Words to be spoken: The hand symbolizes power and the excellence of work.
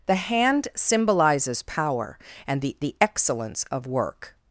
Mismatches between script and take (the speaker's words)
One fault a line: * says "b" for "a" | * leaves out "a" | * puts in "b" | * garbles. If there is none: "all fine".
* puts in "the"